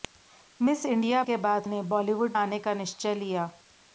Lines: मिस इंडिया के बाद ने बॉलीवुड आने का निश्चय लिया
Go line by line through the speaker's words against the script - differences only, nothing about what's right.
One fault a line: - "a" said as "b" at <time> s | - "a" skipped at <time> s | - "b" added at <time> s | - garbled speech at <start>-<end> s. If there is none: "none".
none